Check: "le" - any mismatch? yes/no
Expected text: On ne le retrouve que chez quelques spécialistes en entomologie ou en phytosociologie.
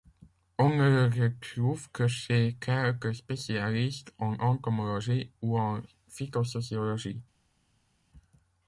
no